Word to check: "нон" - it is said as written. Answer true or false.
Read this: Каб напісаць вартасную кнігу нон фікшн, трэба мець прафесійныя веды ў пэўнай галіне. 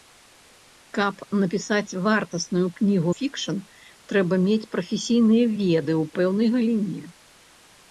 false